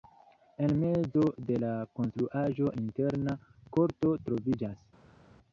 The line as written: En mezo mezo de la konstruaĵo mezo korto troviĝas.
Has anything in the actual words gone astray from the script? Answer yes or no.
yes